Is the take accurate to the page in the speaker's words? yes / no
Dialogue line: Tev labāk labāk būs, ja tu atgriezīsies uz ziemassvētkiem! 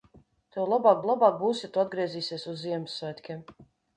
yes